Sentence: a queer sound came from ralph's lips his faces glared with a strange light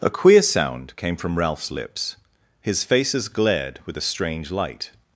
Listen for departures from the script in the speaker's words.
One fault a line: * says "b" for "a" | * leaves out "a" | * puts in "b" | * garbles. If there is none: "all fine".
all fine